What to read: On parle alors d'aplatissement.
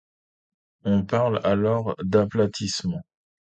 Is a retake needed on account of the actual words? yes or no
no